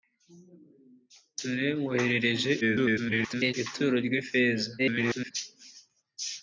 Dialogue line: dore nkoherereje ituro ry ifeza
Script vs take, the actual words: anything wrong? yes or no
yes